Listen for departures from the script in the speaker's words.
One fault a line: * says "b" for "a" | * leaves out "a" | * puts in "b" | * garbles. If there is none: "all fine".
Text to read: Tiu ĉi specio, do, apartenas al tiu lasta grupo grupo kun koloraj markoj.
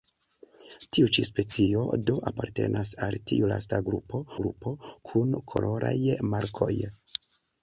all fine